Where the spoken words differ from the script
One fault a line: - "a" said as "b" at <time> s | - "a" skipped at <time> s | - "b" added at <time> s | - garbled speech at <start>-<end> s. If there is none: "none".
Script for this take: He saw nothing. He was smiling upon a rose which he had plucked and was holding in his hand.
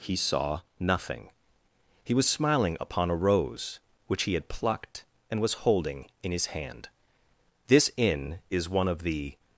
- "This inn is one of the" added at 7.7 s